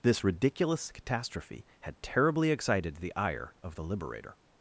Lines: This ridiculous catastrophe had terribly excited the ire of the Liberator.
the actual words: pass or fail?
pass